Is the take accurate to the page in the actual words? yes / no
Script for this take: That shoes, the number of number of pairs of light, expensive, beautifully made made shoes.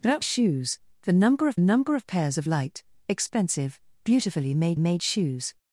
yes